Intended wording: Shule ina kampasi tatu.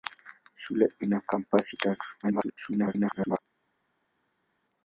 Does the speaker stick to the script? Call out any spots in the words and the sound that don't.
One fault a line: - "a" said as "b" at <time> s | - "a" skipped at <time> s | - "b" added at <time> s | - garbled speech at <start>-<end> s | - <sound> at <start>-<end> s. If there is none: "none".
- garbled speech at 2.2-3.4 s